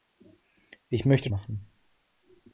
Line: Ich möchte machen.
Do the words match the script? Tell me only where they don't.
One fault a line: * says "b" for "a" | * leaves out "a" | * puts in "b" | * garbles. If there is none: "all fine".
all fine